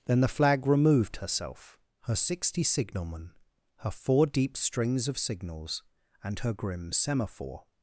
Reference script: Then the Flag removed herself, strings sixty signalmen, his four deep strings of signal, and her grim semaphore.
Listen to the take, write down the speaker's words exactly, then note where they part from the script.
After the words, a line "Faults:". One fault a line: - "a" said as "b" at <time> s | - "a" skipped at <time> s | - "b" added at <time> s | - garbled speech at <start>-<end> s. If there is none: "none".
Then the Flag removed herself, her sixty signalmen, her four deep strings of signals, and her grim semaphore.
Faults:
- "strings" said as "her" at 2.0 s
- "his" said as "her" at 3.8 s
- "signal" said as "signals" at 5.2 s